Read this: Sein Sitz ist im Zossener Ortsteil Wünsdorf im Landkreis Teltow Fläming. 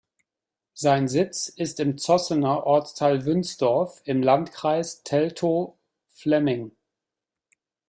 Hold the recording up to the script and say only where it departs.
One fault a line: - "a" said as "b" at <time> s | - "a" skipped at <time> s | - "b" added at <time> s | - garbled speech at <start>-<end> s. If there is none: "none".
none